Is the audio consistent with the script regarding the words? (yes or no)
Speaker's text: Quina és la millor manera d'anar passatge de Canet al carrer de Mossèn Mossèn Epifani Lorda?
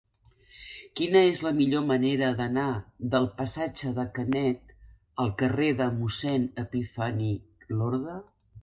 no